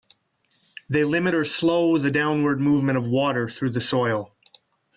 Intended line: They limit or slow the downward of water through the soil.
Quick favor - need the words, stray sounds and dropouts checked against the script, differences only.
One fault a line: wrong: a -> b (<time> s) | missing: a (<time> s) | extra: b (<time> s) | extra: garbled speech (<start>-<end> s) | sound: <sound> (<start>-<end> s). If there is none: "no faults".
extra: movement (2.6 s)